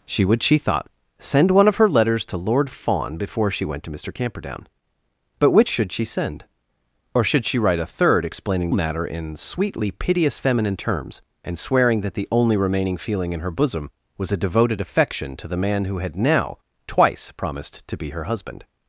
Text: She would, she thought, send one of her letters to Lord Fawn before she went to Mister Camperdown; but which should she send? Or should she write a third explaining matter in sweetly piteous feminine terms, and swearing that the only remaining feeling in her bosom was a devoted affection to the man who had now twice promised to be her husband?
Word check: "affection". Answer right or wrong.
right